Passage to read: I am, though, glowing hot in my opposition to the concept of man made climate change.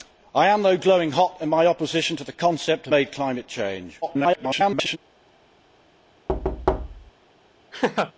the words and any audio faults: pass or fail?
fail